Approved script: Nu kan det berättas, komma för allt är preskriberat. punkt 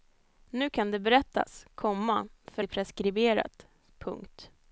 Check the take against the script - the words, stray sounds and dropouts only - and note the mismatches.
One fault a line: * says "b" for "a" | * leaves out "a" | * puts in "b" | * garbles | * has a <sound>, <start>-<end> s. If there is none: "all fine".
* leaves out "allt"